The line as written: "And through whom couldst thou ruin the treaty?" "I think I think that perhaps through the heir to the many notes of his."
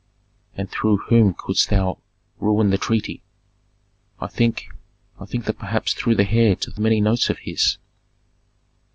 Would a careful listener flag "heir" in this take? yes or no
no